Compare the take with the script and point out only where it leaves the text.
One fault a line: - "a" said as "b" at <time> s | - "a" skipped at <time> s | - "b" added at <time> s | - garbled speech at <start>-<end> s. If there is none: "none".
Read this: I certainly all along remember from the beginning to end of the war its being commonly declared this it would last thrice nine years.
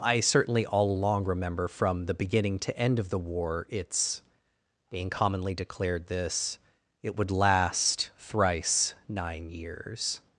none